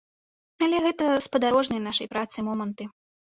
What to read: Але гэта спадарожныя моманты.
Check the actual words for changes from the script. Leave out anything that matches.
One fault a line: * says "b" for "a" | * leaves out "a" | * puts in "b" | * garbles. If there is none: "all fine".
* puts in "нашай працы"